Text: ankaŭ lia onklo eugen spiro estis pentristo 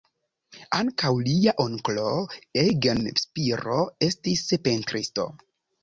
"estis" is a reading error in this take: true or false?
false